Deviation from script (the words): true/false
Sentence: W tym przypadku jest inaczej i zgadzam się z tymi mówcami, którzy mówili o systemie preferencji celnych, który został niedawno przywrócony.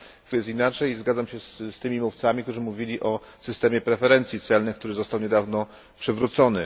true